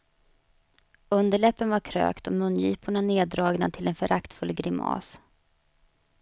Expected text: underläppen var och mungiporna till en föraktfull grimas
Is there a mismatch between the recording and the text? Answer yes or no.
yes